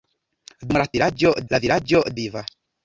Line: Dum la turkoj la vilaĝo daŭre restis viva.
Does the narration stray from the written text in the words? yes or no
yes